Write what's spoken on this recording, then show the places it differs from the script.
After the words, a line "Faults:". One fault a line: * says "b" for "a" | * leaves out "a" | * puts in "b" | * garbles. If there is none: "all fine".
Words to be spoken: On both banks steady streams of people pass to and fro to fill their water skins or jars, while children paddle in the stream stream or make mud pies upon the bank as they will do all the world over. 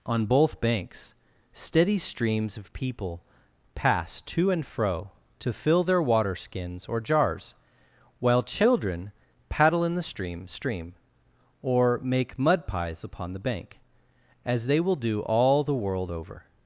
On both banks steady streams of people pass to and fro to fill their water skins or jars, while children paddle in the stream stream or make mud pies upon the bank as they will do all the world over.
Faults:
all fine